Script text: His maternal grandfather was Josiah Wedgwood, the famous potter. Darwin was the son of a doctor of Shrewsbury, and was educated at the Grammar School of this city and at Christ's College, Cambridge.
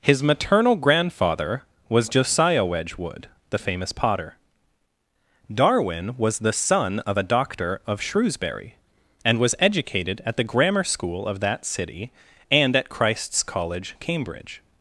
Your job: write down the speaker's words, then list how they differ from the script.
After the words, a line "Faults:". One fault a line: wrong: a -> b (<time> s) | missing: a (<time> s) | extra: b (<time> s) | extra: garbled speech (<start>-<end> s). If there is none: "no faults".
His maternal grandfather was Josiah Wedgwood, the famous potter. Darwin was the son of a doctor of Shrewsbury, and was educated at the Grammar School of that city and at Christ's College, Cambridge.
Faults:
wrong: this -> that (11.4 s)